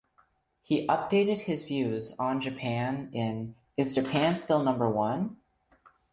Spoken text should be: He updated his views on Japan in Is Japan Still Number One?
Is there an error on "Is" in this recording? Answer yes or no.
no